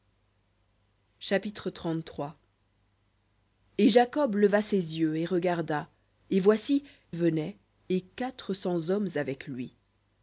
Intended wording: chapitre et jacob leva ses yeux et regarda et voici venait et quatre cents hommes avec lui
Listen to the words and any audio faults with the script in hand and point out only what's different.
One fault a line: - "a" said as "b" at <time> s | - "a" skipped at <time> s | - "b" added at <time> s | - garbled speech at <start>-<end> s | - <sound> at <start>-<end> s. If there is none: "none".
none